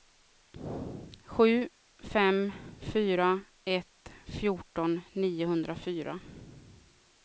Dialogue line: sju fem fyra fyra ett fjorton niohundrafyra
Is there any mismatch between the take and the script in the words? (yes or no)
yes